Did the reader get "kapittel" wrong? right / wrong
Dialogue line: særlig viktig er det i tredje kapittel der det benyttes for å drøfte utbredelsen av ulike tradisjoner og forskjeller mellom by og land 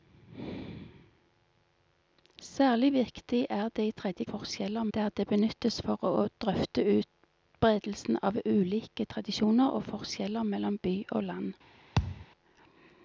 wrong